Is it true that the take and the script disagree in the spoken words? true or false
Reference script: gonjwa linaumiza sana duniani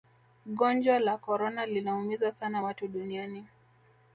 true